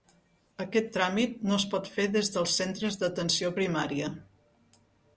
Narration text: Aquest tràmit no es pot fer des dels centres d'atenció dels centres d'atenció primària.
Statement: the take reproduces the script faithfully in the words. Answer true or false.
false